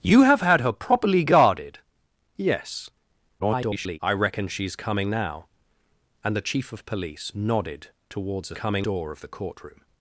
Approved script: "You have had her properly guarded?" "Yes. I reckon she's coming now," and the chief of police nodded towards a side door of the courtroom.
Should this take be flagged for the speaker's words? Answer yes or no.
yes